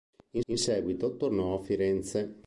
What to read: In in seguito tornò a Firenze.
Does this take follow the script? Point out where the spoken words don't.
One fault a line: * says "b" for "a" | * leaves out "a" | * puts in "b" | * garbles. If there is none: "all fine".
all fine